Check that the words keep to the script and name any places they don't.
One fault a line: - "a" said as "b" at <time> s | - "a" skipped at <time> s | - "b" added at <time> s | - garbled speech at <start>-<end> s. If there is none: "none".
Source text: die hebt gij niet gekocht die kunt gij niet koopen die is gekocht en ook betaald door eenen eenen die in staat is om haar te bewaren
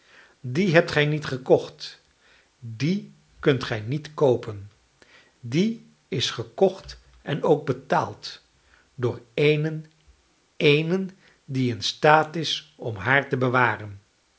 none